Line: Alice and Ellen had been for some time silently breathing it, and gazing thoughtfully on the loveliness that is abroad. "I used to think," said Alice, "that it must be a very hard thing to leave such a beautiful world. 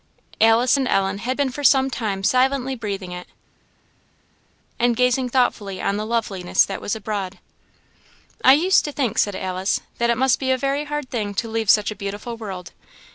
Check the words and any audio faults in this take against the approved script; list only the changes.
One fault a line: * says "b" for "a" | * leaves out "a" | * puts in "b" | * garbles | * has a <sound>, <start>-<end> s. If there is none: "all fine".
* says "was" for "is"